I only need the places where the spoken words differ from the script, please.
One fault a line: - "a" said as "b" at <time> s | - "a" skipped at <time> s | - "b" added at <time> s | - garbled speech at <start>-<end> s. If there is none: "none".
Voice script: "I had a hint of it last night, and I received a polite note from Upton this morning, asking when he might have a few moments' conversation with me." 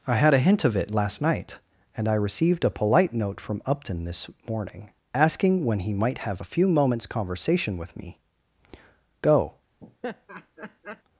- "Go" added at 9.2 s